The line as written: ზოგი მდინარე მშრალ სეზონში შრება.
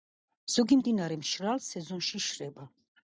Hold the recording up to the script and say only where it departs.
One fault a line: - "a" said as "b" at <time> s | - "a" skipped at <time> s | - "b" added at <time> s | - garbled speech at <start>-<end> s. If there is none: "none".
none